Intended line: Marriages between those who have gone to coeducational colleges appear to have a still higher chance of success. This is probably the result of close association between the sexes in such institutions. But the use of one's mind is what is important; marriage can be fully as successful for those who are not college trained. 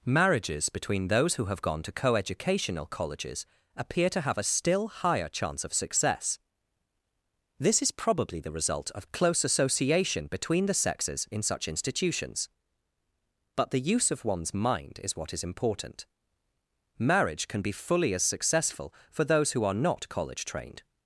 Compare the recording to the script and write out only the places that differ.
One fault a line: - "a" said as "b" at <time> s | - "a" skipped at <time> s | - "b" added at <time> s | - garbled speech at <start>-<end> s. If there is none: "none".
none